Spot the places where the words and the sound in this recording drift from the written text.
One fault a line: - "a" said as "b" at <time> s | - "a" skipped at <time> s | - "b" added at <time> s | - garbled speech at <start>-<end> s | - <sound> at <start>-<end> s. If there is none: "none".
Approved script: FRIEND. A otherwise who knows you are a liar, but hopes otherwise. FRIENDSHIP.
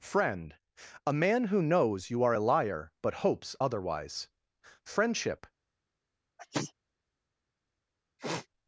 - "otherwise" said as "man" at 1.1 s
- sneeze at 6.4-6.7 s
- sniff at 8.2-8.5 s